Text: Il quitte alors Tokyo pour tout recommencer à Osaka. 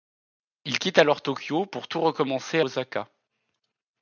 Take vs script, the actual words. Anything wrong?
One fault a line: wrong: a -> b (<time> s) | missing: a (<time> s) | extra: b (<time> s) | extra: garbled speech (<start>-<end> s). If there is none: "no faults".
missing: à (2.6 s)